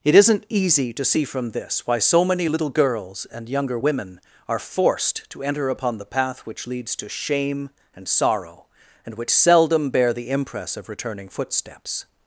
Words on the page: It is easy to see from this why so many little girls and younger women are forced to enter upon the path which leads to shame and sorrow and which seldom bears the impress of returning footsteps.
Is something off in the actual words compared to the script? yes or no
yes